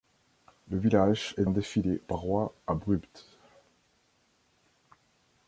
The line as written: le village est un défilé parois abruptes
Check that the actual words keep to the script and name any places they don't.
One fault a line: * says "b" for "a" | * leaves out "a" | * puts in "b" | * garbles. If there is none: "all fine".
all fine